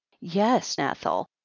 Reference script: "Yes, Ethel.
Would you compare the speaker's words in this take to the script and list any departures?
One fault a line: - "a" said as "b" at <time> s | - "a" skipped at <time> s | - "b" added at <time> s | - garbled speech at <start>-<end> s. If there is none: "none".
none